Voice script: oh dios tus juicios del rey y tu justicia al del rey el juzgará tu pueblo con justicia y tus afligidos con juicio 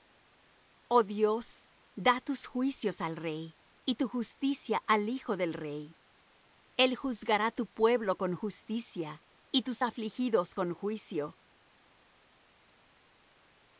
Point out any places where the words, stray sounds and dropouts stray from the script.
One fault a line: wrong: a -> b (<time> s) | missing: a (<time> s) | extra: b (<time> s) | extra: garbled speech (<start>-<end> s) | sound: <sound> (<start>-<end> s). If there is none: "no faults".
extra: da (1.9 s)
wrong: del -> al (3.0 s)
extra: hijo (5.1 s)